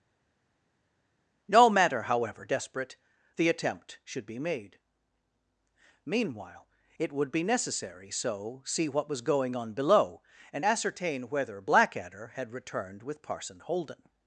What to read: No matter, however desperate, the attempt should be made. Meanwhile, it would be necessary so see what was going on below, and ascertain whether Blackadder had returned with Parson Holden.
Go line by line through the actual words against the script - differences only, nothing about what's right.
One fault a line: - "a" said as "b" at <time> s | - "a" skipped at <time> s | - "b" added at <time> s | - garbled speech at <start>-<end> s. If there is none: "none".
none